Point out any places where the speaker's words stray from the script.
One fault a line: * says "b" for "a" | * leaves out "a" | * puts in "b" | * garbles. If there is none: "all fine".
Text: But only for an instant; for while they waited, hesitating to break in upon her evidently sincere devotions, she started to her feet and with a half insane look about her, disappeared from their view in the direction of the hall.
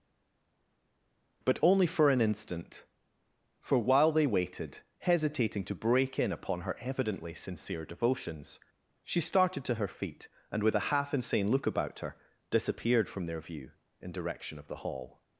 * leaves out "the"